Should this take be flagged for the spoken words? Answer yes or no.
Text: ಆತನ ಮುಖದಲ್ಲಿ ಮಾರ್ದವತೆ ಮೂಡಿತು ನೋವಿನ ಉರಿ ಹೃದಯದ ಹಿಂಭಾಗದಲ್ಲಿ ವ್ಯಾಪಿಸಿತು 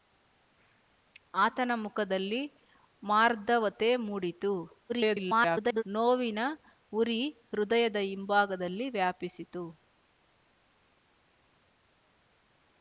yes